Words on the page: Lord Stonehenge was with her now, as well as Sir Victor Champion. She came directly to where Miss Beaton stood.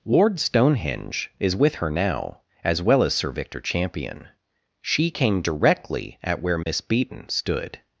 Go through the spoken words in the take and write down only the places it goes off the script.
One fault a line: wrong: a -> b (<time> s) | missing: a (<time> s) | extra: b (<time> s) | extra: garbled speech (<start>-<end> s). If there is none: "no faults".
wrong: was -> is (1.4 s)
wrong: to -> at (6.2 s)